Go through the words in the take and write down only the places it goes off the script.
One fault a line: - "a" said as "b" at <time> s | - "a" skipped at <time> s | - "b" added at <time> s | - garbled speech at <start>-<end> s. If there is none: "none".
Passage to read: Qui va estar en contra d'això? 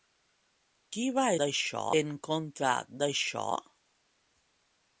- "estar" said as "d'això" at 1.4 s